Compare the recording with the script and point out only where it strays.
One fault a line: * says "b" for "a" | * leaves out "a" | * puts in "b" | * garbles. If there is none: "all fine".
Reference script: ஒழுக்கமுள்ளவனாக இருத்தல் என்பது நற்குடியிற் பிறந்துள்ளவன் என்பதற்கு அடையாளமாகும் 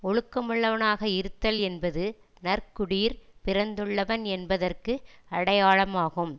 all fine